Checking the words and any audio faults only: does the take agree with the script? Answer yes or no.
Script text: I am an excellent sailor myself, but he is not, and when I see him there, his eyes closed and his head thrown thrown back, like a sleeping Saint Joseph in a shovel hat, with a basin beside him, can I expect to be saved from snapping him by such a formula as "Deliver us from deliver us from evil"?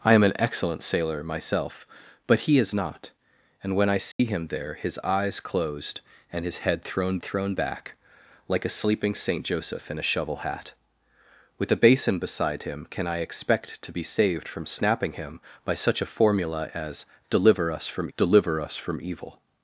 no